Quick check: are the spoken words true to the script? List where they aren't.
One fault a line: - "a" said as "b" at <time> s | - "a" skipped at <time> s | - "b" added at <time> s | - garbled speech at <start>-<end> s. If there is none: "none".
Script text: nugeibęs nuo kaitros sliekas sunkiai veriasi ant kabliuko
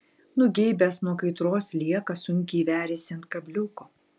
none